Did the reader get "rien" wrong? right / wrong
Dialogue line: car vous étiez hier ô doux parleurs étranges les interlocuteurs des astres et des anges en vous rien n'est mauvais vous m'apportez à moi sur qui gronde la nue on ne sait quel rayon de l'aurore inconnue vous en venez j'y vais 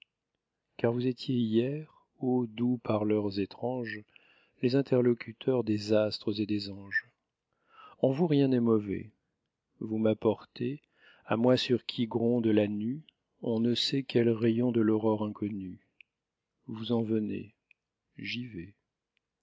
right